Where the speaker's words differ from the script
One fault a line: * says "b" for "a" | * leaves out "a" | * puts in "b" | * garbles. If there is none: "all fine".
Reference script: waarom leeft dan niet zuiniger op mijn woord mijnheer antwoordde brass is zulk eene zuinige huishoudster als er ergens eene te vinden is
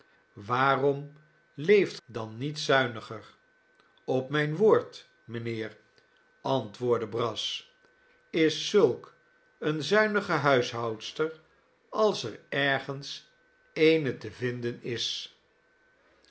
all fine